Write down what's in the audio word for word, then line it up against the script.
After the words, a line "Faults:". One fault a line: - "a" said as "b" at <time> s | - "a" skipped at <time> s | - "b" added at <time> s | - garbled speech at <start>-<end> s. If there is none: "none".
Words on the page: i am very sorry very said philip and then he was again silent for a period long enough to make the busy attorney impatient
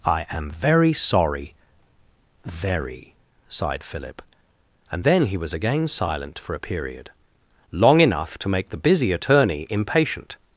i am very sorry very sighed philip and then he was again silent for a period long enough to make the busy attorney impatient
Faults:
- "said" said as "sighed" at 3.5 s